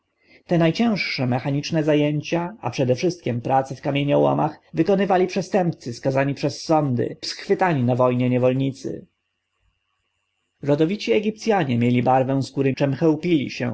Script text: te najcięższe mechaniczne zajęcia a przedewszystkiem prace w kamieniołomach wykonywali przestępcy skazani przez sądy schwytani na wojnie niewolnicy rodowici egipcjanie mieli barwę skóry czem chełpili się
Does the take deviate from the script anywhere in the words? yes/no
no